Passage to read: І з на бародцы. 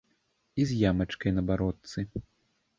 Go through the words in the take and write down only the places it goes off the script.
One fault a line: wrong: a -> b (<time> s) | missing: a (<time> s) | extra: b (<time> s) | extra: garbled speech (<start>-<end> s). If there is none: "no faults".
extra: ямачкай (0.9 s)